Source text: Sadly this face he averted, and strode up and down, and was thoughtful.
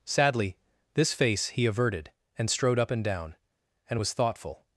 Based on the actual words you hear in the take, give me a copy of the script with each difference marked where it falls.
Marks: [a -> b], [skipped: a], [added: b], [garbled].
Sadly this face he averted, and strode up and down, and was thoughtful.